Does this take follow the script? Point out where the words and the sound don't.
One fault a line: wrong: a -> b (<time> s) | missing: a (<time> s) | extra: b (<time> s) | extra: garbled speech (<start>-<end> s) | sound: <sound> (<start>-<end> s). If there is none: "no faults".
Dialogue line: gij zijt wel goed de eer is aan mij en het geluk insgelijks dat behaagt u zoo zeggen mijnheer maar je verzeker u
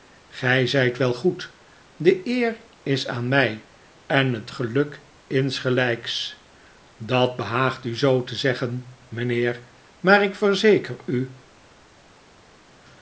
extra: te (8.2 s)
wrong: je -> ik (10.2 s)